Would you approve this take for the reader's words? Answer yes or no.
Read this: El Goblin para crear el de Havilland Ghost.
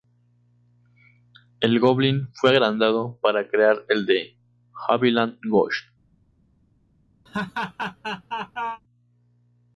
no